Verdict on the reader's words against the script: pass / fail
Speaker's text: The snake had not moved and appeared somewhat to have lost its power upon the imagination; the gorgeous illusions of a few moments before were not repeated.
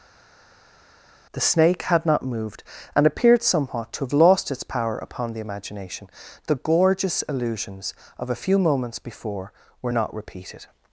pass